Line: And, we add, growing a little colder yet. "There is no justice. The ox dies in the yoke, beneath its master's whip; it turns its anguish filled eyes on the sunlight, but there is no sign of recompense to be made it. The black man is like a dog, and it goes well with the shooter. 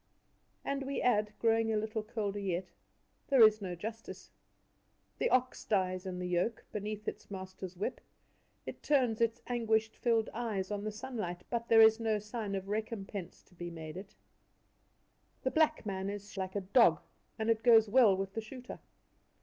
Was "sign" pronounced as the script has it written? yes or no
yes